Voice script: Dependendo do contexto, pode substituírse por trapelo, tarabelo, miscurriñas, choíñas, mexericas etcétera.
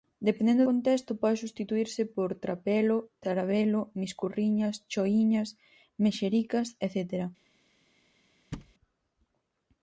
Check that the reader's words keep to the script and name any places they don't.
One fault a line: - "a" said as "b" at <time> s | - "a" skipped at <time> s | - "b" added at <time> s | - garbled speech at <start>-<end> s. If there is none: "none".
- "do" skipped at 0.6 s